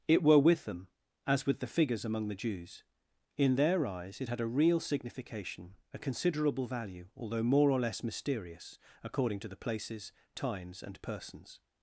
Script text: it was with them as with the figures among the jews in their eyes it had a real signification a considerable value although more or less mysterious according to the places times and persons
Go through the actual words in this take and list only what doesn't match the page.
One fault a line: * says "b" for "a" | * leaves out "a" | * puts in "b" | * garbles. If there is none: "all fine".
* says "were" for "was"